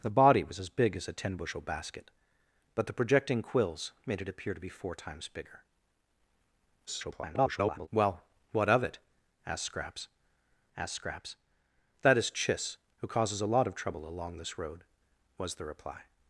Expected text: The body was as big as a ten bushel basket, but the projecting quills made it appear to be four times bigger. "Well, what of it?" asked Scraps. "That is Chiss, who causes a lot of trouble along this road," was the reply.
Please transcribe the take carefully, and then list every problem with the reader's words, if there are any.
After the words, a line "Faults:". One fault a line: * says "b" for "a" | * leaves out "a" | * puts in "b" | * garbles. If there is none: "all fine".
The body was as big as a ten bushel basket, but the projecting quills made it appear to be four times bigger. [garbled] "Well, what of it?" asked Scraps asked Scraps. "That is Chiss, who causes a lot of trouble along this road," was the reply.
Faults:
* garbles
* puts in "asked Scraps"